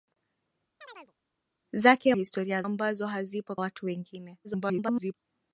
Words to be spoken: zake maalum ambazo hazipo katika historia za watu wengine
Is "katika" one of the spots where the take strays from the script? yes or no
yes